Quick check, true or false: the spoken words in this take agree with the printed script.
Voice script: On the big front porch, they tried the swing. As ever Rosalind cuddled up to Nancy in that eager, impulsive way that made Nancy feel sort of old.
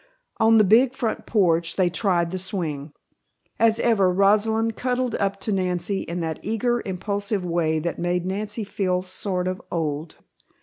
true